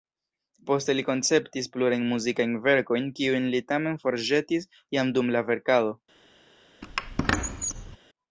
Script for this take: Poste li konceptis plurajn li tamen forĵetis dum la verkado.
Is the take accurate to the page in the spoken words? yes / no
no